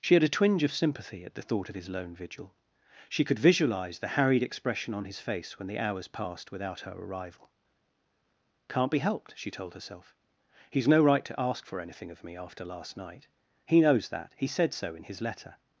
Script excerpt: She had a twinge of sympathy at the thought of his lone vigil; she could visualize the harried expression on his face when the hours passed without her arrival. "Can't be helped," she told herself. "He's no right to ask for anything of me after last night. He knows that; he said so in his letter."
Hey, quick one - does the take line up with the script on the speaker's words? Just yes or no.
yes